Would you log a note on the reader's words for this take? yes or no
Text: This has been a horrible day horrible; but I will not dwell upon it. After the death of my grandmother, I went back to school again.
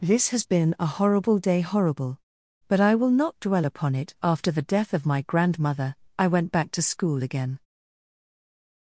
no